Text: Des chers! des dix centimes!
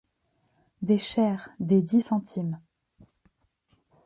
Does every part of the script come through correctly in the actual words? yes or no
yes